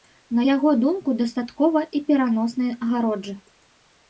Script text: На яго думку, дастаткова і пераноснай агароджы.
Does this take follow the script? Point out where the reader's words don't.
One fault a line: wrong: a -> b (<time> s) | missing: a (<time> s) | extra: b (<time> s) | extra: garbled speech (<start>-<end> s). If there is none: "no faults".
no faults